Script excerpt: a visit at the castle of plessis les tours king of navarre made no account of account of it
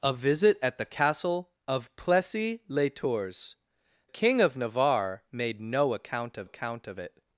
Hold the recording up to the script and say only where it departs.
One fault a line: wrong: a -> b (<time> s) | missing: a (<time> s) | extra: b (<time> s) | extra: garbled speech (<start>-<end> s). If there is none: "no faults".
no faults